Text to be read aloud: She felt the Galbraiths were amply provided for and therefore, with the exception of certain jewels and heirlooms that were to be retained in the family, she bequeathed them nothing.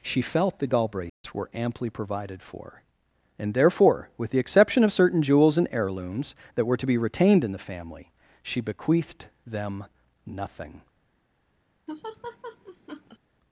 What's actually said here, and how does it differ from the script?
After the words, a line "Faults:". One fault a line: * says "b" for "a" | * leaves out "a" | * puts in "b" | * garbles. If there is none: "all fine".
She felt the Galbraiths were amply provided for and therefore, with the exception of certain jewels and heirlooms that were to be retained in the family, she bequeathed them nothing.
Faults:
all fine